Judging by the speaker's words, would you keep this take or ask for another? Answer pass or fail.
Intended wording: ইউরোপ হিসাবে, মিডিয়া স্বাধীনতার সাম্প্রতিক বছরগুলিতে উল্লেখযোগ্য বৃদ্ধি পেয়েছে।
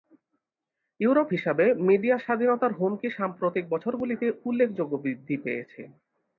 fail